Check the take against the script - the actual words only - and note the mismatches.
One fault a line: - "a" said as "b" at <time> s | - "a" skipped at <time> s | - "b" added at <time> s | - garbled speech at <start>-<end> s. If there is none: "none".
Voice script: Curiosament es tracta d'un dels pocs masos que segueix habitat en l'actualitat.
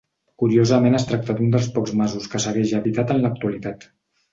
none